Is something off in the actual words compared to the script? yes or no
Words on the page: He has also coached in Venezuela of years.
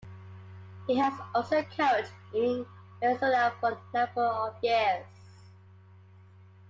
yes